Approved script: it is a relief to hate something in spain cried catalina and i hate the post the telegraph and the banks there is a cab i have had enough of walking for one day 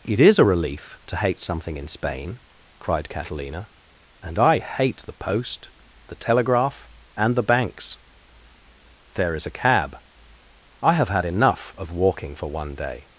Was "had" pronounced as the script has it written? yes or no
yes